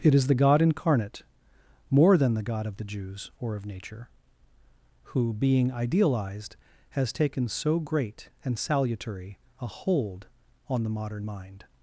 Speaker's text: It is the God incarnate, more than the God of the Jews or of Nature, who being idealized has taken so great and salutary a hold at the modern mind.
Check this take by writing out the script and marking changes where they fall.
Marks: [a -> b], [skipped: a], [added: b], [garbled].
It is the God incarnate, more than the God of the Jews or of Nature, who being idealized has taken so great and salutary a hold [at -> on] the modern mind.